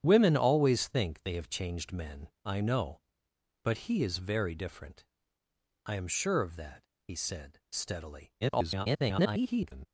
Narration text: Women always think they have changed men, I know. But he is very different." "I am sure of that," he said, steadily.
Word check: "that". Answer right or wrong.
right